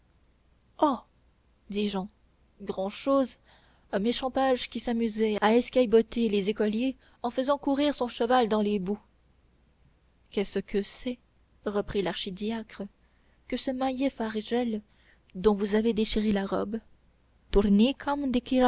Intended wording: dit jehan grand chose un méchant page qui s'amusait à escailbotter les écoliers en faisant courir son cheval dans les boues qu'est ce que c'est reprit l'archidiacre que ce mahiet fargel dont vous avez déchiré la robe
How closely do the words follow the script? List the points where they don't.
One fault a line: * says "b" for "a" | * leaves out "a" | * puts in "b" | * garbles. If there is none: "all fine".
all fine